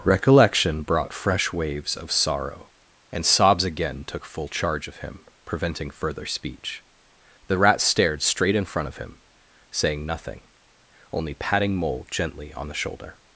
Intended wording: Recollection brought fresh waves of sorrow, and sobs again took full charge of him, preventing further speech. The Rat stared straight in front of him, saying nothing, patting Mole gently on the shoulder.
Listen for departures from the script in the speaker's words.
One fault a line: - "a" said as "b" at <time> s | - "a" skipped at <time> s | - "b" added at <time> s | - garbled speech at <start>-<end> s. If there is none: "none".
- "only" added at 11.1 s